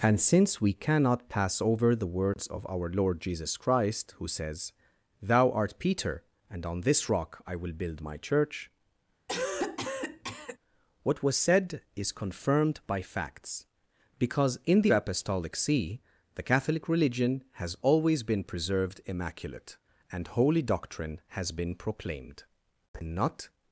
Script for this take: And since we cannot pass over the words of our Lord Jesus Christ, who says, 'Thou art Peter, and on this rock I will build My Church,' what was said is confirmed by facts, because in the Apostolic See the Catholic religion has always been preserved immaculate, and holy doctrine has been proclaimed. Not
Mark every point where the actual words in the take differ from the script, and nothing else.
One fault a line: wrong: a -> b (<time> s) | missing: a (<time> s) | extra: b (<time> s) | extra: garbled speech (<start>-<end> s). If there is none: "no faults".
no faults